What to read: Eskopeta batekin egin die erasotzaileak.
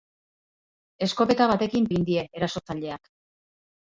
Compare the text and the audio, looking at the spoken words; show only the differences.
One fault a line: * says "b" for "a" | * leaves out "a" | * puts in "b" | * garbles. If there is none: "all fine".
all fine